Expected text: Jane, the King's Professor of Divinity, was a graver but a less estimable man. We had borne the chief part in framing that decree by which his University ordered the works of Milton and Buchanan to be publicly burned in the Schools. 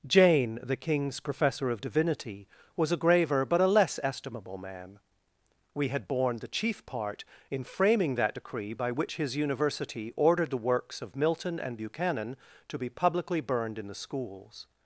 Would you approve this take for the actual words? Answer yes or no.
yes